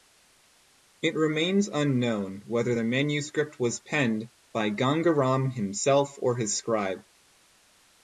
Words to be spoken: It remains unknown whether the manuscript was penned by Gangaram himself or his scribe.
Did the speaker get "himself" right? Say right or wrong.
right